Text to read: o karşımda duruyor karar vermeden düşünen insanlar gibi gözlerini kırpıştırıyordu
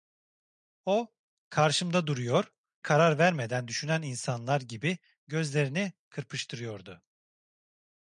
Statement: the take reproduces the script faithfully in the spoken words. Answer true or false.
true